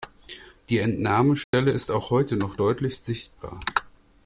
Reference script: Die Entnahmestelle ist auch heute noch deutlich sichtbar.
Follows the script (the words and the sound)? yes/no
no